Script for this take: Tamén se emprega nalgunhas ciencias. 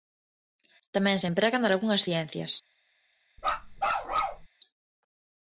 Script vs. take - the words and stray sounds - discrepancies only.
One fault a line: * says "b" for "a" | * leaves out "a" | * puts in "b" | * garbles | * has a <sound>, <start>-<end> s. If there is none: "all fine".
* has a bark, 3.4-4.5 s